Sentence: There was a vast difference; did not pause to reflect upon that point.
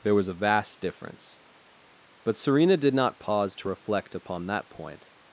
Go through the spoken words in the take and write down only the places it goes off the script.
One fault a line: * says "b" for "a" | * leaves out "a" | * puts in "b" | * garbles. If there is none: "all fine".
* puts in "but Serena"